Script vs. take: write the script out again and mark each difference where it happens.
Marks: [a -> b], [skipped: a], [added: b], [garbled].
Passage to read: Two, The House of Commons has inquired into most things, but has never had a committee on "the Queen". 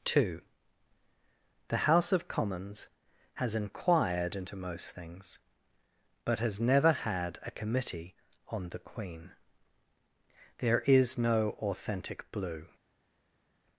Two, The House of Commons has inquired into most things, but has never had a committee on "the Queen". [added: There is no authentic blue]